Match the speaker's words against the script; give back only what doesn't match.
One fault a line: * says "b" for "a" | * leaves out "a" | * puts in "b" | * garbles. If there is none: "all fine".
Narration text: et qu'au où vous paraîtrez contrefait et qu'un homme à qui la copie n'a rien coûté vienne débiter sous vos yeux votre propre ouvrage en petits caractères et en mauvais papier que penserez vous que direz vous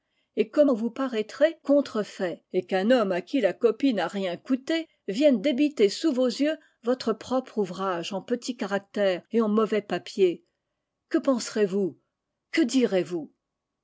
all fine